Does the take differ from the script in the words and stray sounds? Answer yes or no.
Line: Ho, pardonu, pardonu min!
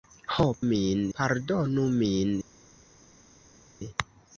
yes